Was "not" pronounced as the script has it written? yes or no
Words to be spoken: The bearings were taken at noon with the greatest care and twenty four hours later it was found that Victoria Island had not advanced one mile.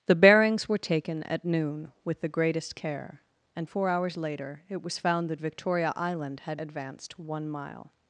no